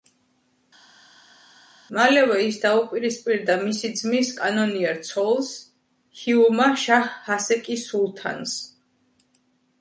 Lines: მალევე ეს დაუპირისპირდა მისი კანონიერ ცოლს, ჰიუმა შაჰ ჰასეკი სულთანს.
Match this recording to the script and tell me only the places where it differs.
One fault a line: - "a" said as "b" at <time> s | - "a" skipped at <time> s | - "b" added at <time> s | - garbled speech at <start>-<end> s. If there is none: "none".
- "ეს" said as "ის" at 2.5 s
- "ძმის" added at 4.0 s